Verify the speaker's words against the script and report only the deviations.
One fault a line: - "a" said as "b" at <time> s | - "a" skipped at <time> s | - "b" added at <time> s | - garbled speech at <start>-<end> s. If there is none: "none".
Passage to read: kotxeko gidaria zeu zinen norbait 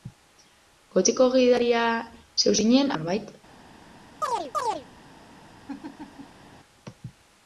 none